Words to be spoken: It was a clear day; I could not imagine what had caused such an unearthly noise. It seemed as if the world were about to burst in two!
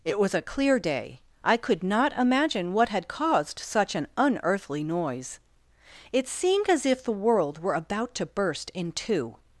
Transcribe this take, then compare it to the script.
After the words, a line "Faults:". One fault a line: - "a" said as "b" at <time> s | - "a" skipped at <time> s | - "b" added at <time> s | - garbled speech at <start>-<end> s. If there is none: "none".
It was a clear day; I could not imagine what had caused such an unearthly noise. It seemed as if the world were about to burst in two!
Faults:
none